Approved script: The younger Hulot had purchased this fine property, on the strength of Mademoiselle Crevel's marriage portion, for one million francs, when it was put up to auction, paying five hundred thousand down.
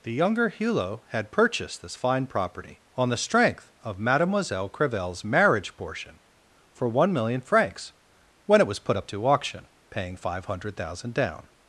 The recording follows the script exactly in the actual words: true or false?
true